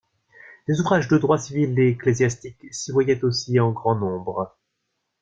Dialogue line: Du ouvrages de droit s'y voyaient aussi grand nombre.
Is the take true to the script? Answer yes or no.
no